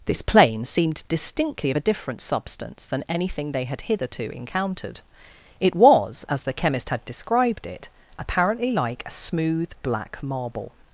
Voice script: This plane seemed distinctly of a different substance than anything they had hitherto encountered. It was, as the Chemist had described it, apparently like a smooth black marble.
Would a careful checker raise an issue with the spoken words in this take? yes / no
no